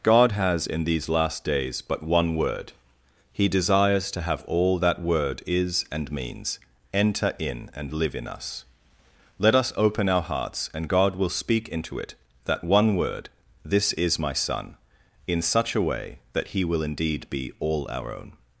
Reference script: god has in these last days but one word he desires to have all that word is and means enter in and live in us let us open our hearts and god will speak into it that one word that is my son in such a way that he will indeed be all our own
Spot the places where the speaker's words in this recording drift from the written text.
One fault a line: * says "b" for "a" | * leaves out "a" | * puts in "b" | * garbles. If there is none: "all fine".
* says "this" for "that"